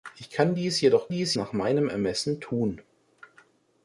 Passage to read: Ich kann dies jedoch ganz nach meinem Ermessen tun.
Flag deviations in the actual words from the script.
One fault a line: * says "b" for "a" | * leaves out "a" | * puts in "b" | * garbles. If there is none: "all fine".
* says "dies" for "ganz"